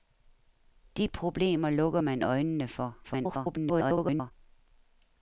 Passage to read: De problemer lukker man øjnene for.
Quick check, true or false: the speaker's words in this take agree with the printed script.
false